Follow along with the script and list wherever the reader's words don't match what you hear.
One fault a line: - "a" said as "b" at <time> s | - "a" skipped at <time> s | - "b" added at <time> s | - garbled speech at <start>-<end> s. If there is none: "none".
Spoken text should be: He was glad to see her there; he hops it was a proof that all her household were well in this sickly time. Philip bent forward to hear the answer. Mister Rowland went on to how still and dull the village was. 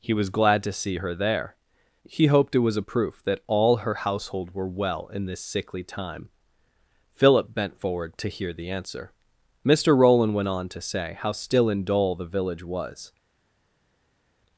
- "hops" said as "hoped" at 2.2 s
- "say" added at 10.8 s